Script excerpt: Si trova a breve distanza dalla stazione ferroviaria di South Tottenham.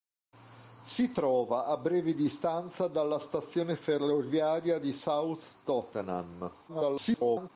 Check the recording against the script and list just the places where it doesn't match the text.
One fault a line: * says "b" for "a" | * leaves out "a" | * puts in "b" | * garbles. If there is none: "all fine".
* garbles